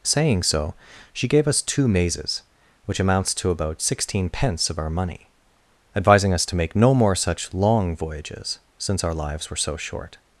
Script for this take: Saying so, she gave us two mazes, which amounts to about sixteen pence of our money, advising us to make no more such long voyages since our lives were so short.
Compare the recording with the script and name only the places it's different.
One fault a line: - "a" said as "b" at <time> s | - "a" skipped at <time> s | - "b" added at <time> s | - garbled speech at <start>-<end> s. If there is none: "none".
none